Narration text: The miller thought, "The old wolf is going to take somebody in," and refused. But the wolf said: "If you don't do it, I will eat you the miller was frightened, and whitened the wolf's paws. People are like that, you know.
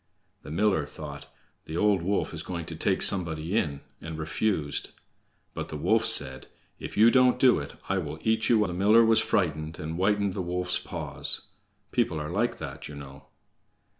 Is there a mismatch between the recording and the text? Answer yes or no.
no